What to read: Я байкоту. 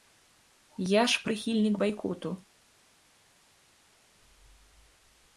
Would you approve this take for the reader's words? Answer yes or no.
no